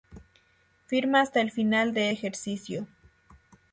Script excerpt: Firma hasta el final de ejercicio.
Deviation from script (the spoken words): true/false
false